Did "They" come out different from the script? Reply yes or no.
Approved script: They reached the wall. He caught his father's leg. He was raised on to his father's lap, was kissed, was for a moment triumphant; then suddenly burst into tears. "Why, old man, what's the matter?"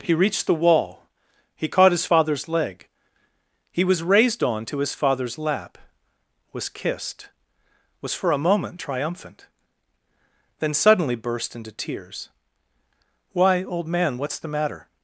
yes